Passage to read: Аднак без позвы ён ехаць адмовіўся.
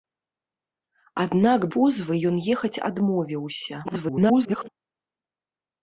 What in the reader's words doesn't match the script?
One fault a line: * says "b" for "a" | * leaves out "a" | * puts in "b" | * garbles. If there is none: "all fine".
* leaves out "без"
* garbles